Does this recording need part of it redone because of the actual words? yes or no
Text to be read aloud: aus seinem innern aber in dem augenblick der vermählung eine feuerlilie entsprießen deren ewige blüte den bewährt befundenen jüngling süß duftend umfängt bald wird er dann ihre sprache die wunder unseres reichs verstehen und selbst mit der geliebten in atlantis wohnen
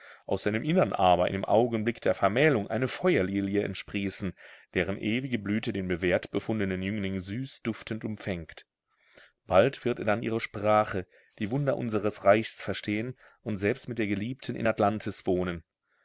no